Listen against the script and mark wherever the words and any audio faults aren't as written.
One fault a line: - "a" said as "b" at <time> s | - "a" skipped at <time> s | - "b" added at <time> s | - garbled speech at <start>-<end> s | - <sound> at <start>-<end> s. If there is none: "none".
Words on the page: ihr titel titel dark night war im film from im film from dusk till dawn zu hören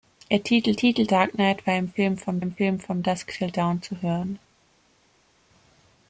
none